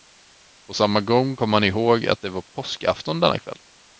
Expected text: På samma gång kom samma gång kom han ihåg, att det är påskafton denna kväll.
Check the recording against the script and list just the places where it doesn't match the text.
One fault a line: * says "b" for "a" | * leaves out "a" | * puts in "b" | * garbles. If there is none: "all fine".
* leaves out "samma gång kom"
* says "var" for "är"